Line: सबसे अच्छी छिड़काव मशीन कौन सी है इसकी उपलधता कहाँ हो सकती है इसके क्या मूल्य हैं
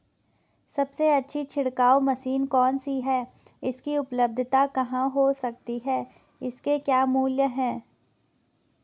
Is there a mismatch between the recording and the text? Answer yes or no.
no